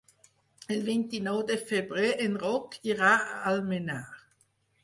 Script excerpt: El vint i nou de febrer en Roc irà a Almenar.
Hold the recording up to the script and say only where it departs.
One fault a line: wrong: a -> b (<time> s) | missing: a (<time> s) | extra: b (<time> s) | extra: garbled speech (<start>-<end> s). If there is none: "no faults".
no faults